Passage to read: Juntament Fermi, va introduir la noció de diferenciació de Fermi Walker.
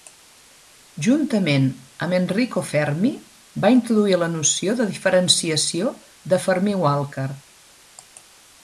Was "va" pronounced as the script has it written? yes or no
yes